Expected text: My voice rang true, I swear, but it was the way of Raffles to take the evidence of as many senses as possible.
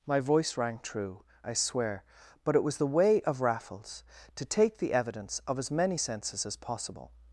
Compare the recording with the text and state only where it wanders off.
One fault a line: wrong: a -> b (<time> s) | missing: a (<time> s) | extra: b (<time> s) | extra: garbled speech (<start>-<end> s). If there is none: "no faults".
no faults